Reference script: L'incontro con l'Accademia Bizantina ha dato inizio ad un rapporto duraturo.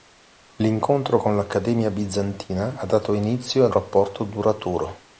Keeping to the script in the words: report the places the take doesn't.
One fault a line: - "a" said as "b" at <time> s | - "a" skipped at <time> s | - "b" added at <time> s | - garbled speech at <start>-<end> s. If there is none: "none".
- "un" skipped at 3.7 s